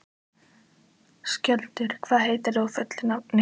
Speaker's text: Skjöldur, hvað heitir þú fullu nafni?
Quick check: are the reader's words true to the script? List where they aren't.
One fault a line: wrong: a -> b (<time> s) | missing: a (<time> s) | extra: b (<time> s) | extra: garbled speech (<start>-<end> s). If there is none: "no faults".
no faults